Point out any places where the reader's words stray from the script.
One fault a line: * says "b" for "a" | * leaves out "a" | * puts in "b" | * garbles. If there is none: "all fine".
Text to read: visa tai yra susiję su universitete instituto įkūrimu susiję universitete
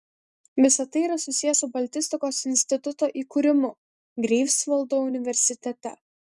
* says "baltistikos" for "universitete"
* says "greifsvaldo" for "susiję"